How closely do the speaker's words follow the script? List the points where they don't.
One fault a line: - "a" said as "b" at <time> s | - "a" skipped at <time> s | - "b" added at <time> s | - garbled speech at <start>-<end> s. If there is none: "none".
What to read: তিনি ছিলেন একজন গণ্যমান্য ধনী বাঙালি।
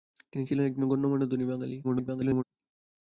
- garbled speech at 1.8-2.4 s